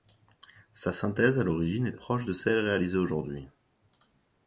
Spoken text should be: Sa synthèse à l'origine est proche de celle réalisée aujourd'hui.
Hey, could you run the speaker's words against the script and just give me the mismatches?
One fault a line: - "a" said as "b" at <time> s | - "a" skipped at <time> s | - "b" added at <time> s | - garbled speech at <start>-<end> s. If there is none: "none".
none